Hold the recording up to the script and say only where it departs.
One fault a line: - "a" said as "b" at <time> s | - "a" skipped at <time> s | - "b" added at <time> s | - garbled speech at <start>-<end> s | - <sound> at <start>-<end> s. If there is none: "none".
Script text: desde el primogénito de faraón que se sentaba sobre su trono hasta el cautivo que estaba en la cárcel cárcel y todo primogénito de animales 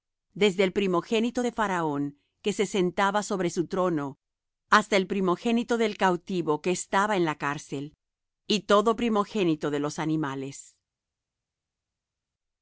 - "primogénito del" added at 5.1 s
- "cárcel" skipped at 7.9 s
- "los" added at 9.8 s